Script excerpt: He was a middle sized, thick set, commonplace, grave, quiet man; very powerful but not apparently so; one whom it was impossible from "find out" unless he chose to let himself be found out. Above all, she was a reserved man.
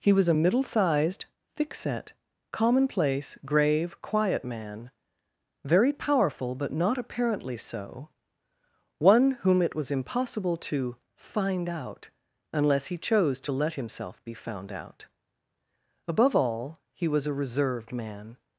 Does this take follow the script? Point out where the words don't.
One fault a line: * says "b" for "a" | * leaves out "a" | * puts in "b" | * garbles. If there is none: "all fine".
* says "to" for "from"
* says "he" for "she"